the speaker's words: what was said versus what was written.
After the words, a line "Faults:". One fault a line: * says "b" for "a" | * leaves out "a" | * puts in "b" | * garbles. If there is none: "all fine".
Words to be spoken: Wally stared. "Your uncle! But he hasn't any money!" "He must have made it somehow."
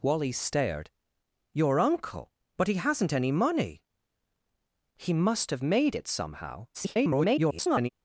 Wally stared. "Your uncle! But he hasn't any money!" "He must have made it somehow." [garbled]
Faults:
* garbles